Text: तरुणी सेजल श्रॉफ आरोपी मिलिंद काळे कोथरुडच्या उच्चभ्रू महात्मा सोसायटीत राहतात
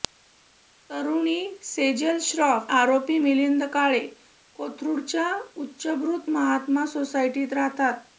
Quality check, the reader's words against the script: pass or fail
pass